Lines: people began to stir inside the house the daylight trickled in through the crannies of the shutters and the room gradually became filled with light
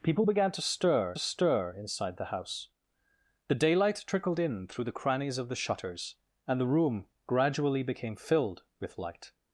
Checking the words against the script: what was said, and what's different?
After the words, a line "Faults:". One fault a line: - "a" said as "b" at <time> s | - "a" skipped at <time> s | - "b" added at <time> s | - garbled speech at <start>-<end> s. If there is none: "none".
people began to stir stir inside the house the daylight trickled in through the crannies of the shutters and the room gradually became filled with light
Faults:
- "stir" added at 1.2 s